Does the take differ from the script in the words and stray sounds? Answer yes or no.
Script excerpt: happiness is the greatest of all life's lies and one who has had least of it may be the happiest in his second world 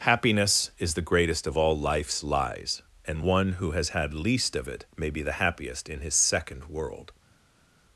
no